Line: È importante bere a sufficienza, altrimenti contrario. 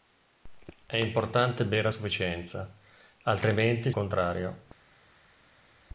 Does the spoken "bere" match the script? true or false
true